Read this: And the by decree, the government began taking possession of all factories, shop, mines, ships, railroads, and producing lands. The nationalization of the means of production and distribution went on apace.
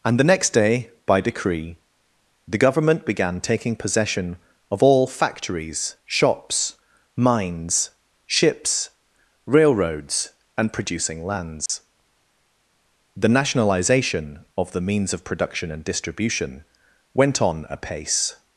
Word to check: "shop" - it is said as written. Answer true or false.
false